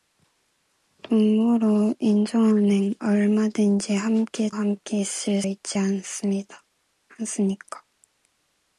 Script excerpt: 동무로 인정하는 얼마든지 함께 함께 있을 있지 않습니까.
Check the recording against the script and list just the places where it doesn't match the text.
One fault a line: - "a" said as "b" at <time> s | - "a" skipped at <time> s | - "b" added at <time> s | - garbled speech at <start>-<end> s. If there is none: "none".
none